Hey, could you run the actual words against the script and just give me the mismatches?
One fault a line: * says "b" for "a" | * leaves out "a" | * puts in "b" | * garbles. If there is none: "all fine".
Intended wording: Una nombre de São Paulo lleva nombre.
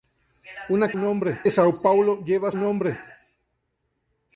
all fine